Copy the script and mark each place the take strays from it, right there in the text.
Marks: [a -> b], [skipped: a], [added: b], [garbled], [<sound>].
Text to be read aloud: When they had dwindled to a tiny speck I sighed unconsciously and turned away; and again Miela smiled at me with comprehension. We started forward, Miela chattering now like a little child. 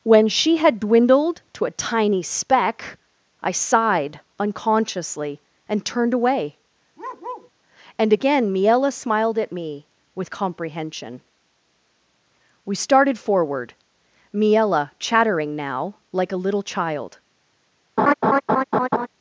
When [they -> she] had dwindled to a tiny speck I sighed unconsciously and turned away; [bark] and again Miela smiled at me with comprehension. We started forward, Miela chattering now like a little child. [laugh]